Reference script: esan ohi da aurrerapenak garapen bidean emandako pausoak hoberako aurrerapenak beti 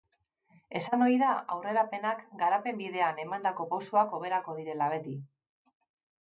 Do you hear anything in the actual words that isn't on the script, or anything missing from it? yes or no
yes